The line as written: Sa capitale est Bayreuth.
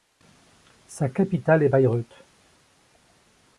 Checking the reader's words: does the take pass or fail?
pass